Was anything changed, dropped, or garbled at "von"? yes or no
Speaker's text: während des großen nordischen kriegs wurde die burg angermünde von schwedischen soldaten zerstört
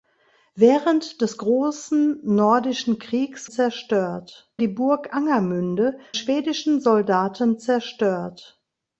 yes